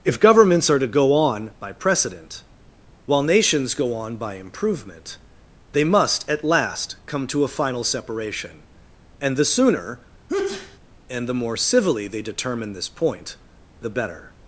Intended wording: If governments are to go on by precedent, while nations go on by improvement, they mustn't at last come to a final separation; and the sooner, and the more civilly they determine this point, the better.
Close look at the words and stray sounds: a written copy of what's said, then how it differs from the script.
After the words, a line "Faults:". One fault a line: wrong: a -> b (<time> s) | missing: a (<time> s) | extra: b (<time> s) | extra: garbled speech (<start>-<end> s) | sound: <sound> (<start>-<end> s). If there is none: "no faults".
If governments are to go on by precedent, while nations go on by improvement, they must at last come to a final separation; and the sooner, and the more civilly they determine this point, the better.
Faults:
wrong: mustn't -> must (5.8 s)
sound: sneeze (10.3-10.8 s)